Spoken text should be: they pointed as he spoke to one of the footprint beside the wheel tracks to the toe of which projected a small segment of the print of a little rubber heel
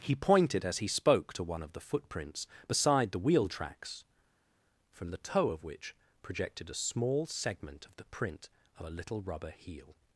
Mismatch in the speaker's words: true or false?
true